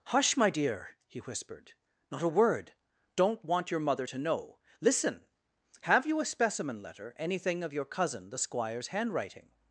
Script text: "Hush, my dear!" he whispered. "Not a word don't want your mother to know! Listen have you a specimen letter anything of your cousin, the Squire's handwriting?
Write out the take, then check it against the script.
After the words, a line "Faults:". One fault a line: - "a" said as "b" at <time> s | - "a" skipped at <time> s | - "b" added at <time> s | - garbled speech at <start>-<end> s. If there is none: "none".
"Hush, my dear!" he whispered. "Not a word don't want your mother to know! Listen have you a specimen letter anything of your cousin, the Squire's handwriting?
Faults:
none